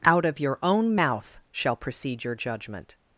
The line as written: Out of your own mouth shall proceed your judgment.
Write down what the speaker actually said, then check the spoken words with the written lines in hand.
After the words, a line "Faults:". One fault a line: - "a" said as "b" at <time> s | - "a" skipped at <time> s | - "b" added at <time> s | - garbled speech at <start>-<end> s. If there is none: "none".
Out of your own mouth shall proceed your judgment.
Faults:
none